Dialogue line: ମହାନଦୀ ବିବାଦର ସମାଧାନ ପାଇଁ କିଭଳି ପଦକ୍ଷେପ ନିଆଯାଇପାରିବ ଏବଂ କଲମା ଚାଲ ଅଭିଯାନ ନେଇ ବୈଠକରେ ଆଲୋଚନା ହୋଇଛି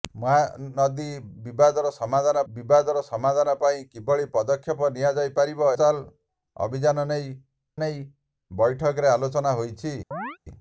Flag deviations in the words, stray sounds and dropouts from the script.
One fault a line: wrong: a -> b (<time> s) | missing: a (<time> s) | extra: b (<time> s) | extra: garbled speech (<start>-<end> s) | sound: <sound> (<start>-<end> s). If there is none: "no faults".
extra: ବିବାଦର ସମାଧାନ (2.5 s)
missing: ଏବଂ କଲମା (5.7 s)
extra: ନେଇ (7.8 s)
sound: chirp (10.1-10.4 s)